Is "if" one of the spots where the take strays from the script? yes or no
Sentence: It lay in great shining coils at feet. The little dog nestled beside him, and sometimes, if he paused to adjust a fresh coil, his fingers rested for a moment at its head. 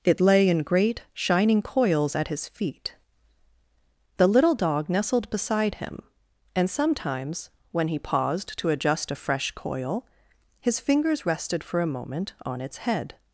yes